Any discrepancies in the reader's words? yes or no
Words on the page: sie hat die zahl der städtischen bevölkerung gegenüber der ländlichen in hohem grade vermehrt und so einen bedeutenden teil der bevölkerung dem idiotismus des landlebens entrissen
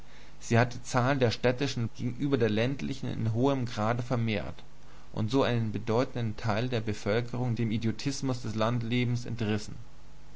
yes